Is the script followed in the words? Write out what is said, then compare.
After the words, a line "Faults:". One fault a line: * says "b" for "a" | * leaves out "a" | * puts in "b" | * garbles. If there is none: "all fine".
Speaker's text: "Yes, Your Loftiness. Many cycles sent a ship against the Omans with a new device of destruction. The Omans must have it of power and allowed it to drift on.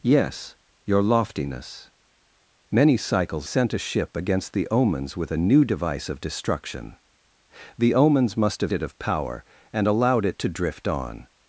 "Yes, Your Loftiness. Many cycles sent a ship against the Omans with a new device of destruction. The Omans must have it of power and allowed it to drift on.
Faults:
all fine